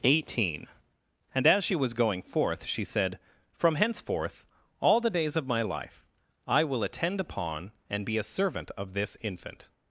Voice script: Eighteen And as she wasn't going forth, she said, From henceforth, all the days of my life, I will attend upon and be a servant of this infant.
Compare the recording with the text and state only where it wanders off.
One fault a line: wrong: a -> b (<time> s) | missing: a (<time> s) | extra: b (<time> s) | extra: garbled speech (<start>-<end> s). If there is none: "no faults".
wrong: wasn't -> was (1.8 s)